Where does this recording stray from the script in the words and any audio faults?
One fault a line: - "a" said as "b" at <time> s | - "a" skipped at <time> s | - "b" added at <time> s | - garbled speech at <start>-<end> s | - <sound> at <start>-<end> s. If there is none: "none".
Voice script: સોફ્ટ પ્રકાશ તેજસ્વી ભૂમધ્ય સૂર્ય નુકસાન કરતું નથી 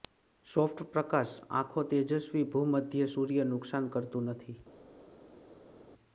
- "આંખો" added at 1.5 s